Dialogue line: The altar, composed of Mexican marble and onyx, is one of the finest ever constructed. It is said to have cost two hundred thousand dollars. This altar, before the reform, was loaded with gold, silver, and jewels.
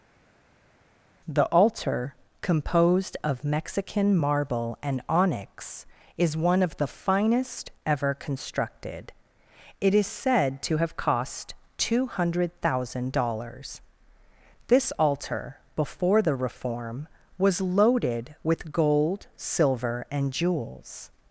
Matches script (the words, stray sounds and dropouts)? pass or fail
pass